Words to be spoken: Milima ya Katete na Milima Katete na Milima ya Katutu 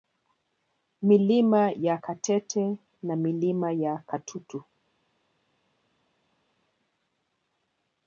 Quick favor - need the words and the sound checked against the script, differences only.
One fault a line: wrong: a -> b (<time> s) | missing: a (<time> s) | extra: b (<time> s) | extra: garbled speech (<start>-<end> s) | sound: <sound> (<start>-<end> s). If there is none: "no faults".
missing: Katete na Milima (3.7 s)